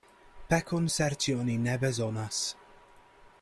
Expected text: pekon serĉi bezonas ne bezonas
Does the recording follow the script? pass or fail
fail